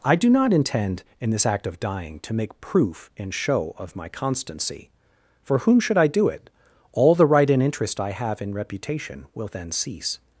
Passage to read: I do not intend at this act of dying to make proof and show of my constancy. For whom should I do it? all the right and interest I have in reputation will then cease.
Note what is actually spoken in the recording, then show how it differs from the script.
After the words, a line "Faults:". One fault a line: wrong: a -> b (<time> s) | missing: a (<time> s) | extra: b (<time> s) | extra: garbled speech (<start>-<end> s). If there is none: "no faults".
I do not intend in this act of dying to make proof and show of my constancy. For whom should I do it? all the right and interest I have in reputation will then cease.
Faults:
wrong: at -> in (1.2 s)